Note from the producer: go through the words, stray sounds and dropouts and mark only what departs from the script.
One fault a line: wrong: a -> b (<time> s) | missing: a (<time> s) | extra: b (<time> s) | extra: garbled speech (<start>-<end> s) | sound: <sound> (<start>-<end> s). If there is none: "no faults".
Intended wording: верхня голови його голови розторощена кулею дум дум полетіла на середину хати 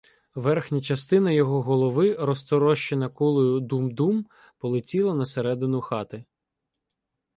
wrong: голови -> частина (0.8 s)